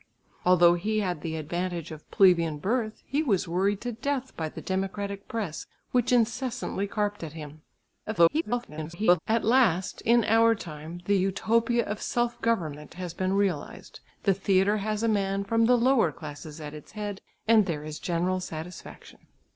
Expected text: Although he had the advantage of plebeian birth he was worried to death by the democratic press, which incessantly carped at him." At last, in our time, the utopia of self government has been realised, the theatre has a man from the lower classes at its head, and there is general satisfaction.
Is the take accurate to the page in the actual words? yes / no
no